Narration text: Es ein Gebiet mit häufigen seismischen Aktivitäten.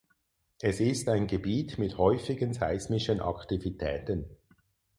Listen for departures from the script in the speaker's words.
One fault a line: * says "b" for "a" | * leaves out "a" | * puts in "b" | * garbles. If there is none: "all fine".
* puts in "ist"